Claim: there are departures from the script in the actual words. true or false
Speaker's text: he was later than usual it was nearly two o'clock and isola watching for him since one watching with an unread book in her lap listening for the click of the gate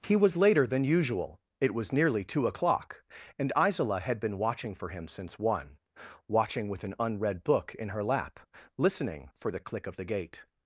true